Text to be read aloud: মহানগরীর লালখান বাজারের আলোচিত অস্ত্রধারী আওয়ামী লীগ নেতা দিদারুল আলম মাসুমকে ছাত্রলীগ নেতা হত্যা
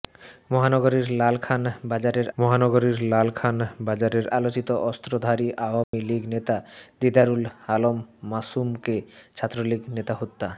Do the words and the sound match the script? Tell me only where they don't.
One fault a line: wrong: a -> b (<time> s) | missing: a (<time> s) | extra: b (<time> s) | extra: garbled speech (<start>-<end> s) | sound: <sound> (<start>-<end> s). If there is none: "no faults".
extra: মহানগরীর লালখান বাজারের (2.4 s)
sound: dropout (5.8-5.9 s)